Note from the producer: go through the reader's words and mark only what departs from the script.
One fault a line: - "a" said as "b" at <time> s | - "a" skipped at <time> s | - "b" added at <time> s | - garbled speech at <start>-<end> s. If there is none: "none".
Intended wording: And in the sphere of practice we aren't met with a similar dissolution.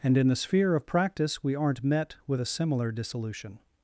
none